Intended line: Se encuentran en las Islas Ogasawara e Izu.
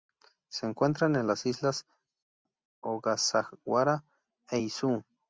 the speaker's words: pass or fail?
pass